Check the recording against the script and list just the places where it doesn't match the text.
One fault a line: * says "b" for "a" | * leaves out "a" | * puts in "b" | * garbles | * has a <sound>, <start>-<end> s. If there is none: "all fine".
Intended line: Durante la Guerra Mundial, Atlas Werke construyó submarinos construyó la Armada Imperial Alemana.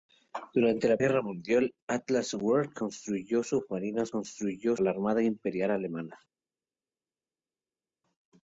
all fine